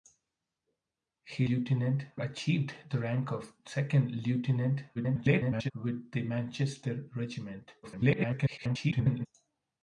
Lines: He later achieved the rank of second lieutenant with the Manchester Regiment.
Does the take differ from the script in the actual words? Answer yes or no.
yes